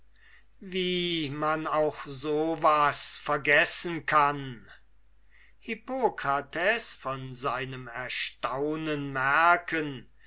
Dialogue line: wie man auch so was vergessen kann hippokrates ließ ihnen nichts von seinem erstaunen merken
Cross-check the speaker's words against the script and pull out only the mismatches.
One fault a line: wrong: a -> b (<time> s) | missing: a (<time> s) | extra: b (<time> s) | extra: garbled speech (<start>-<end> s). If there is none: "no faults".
missing: ließ ihnen nichts (6.9 s)